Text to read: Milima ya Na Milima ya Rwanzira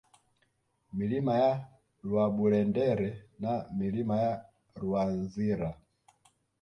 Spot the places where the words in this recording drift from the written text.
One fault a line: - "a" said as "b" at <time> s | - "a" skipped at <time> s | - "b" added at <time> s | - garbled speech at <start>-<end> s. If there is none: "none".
- "Rwaburendere" added at 2.1 s